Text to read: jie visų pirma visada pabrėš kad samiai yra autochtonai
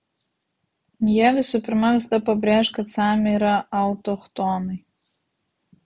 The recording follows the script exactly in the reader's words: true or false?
true